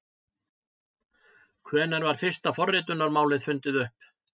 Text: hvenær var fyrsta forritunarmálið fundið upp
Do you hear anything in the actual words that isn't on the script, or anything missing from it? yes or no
no